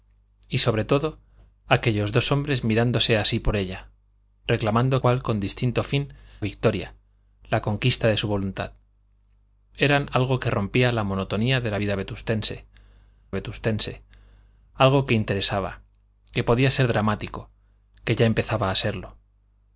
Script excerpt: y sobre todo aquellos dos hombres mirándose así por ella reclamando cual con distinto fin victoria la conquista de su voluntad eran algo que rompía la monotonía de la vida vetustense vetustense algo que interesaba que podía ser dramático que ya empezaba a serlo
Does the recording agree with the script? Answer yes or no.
yes